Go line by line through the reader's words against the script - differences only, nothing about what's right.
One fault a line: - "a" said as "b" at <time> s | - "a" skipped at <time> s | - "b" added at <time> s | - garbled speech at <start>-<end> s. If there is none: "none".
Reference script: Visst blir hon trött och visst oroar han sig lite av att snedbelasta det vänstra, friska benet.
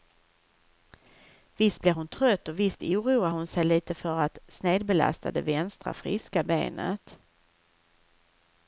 - "han" said as "hon" at 3.3 s
- "av" said as "för" at 3.9 s